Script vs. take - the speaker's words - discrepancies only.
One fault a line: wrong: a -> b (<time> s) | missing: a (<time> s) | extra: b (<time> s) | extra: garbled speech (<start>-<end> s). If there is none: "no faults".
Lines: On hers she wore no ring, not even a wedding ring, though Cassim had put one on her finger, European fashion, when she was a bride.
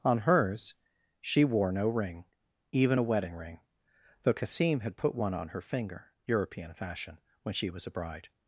missing: not (2.2 s)